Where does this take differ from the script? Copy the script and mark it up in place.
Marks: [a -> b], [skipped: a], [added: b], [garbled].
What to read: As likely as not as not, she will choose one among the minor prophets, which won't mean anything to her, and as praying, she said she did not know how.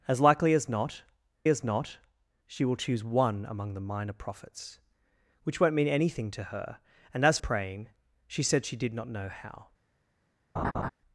As likely as not as not, she will choose one among the minor prophets, which won't mean anything to her, and as praying, she said she did not know how.